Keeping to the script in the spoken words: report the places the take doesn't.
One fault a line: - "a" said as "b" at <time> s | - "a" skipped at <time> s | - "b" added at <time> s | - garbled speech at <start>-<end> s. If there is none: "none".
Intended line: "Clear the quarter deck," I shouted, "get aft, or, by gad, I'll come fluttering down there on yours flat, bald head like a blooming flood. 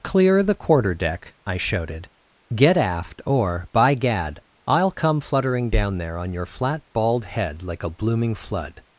- "yours" said as "your" at 6.3 s